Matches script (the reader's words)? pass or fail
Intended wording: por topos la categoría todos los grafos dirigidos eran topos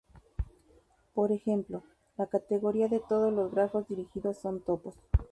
fail